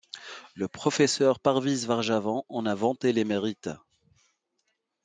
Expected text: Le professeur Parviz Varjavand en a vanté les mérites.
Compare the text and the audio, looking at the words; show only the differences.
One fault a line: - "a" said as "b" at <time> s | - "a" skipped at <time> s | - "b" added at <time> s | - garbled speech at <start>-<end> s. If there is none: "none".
none